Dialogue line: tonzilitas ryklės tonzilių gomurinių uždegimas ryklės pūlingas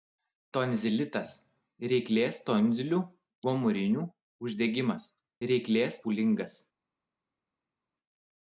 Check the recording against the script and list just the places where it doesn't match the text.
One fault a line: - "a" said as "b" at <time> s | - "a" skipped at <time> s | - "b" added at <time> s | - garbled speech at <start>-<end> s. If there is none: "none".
none